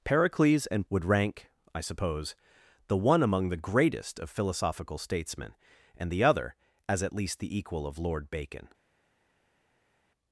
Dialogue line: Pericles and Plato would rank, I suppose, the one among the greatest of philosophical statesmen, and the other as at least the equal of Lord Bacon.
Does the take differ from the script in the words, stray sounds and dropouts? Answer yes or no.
yes